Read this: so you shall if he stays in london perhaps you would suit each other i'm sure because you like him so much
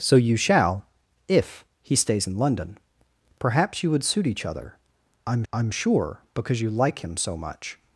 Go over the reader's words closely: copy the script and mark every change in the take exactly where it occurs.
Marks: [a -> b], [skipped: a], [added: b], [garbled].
so you shall if he stays in london perhaps you would suit each other i'm [added: i'm] sure because you like him so much